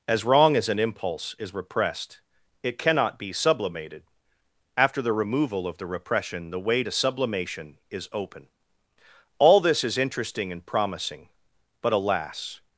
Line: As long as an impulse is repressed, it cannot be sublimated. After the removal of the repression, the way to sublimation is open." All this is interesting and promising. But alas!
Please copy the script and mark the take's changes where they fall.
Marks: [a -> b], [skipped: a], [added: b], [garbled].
As [long -> wrong] as an impulse is repressed, it cannot be sublimated. After the removal of the repression, the way to sublimation is open." All this is interesting and promising. But alas!